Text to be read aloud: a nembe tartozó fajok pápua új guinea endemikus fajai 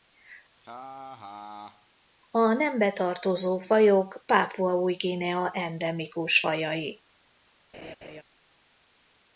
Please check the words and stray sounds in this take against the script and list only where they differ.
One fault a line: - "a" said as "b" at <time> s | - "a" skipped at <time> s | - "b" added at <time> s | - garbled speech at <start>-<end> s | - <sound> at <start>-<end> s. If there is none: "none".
- laugh at 0.6-1.9 s
- laugh at 7.7-8.2 s